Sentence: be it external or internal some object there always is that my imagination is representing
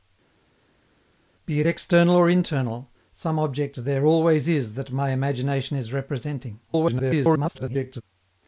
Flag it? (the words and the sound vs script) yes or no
yes